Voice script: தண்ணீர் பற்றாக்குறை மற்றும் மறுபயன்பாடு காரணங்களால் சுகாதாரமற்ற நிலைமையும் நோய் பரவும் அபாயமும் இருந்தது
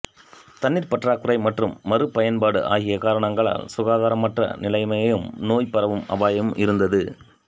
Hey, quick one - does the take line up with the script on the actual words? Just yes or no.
no